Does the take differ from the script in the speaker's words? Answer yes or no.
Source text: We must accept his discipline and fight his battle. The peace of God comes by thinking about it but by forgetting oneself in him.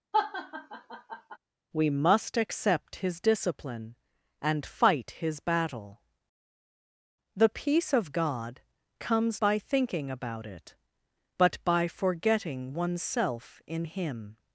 no